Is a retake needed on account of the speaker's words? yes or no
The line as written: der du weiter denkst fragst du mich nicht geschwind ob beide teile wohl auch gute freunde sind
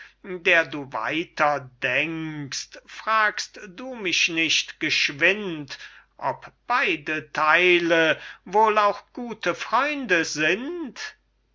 no